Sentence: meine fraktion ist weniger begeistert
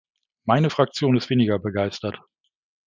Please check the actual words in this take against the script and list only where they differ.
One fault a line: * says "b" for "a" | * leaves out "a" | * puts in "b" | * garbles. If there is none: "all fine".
all fine